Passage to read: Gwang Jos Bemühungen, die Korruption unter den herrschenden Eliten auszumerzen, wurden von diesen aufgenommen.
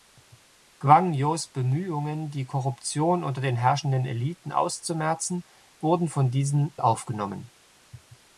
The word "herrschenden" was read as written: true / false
true